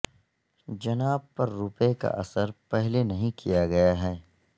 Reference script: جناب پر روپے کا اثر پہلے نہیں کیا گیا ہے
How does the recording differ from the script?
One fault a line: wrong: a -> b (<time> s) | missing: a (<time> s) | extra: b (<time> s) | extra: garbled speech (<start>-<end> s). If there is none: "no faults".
no faults